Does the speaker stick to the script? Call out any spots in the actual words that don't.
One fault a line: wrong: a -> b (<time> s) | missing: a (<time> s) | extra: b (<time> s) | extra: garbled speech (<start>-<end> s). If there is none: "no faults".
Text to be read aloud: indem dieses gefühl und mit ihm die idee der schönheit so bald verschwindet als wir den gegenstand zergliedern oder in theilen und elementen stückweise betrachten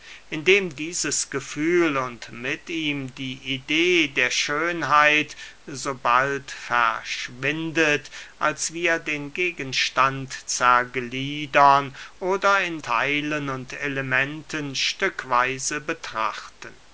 no faults